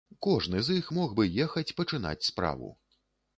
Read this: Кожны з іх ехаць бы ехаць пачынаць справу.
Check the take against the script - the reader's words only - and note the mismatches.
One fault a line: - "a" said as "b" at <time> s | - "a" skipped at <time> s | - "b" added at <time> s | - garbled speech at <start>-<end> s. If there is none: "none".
- "ехаць" said as "мог" at 1.0 s